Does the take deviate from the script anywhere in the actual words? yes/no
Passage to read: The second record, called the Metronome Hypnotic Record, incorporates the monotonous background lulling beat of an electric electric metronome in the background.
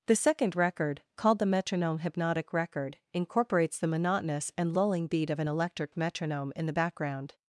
yes